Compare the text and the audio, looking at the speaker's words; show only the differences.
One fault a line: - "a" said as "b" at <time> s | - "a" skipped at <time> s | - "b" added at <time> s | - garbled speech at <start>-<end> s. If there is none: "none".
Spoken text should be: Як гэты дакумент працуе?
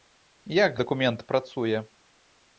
- "гэты" skipped at 0.8 s